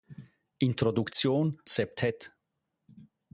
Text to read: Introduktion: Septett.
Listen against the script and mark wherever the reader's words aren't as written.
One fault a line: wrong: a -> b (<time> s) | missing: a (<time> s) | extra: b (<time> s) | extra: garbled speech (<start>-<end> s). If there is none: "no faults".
no faults